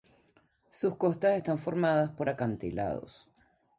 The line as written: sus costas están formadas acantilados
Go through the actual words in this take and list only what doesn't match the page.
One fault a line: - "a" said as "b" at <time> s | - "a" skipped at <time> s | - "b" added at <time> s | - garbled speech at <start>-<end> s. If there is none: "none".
- "por" added at 2.1 s